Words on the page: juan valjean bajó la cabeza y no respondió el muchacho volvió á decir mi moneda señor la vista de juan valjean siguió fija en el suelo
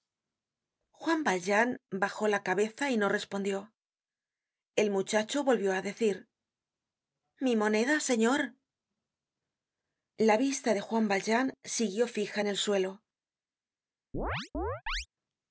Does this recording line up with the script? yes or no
yes